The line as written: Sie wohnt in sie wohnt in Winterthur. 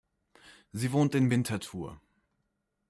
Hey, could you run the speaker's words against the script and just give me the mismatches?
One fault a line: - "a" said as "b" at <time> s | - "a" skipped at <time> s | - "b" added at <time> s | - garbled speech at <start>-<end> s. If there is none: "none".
- "sie wohnt in" skipped at 1.3 s